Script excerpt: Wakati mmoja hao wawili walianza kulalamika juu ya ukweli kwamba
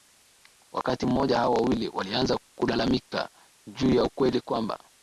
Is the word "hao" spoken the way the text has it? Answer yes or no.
yes